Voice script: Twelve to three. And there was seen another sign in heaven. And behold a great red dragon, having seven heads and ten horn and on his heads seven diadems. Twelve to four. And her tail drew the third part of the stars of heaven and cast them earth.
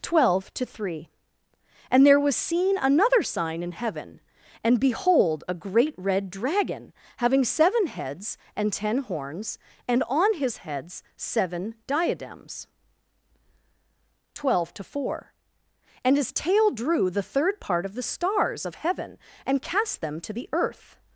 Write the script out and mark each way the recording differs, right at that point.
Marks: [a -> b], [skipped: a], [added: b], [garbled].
Twelve to three. And there was seen another sign in heaven. And behold a great red dragon, having seven heads and ten [horn -> horns] and on his heads seven diadems. Twelve to four. And [her -> his] tail drew the third part of the stars of heaven and cast them [added: to the] earth.